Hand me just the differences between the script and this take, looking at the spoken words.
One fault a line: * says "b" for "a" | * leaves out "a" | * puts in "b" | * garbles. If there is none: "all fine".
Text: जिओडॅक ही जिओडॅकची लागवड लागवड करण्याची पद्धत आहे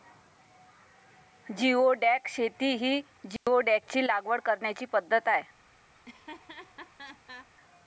* puts in "शेती"
* leaves out "लागवड"